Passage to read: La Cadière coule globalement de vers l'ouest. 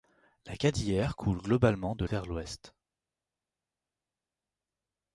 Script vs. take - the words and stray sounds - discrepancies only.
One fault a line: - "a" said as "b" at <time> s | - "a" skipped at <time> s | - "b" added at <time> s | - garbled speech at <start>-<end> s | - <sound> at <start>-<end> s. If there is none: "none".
none